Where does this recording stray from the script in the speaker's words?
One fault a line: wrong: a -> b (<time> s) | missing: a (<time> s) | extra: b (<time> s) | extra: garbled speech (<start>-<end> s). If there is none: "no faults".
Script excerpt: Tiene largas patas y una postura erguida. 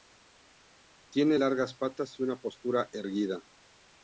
no faults